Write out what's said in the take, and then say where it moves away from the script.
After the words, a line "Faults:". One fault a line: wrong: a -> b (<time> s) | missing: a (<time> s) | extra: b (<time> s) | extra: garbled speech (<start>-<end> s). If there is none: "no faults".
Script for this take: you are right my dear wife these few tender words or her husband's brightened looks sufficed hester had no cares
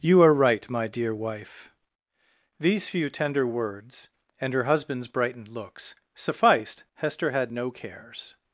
you are right my dear wife these few tender words and her husband's brightened looks sufficed hester had no cares
Faults:
wrong: or -> and (4.4 s)